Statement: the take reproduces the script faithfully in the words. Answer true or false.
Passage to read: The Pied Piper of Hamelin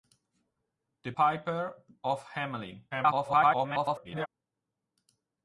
false